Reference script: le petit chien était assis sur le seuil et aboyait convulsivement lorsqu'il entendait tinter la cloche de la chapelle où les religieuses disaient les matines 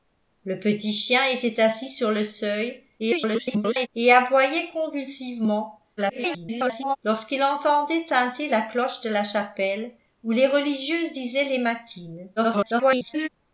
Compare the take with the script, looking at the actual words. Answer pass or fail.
fail